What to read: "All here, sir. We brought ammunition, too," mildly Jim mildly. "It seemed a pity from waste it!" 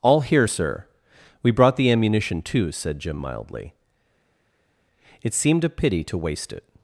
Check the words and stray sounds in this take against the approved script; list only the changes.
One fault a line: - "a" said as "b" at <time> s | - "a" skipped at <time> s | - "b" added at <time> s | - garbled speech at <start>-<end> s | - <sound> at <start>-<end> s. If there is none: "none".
- "the" added at 1.7 s
- "mildly" said as "said" at 2.7 s
- "from" said as "to" at 6.0 s